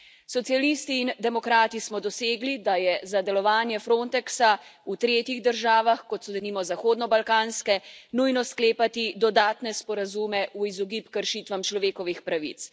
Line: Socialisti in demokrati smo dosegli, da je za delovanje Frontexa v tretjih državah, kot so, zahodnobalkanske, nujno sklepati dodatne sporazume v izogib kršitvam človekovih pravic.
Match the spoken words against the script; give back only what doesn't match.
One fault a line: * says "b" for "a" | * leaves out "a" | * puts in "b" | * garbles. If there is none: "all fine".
* puts in "denimo"